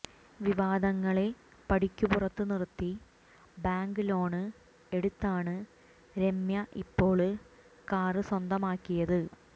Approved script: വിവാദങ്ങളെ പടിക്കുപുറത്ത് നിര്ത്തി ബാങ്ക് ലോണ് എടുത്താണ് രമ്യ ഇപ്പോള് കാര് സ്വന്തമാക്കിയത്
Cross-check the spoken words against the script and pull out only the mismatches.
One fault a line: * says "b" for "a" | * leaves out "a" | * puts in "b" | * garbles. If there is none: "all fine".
all fine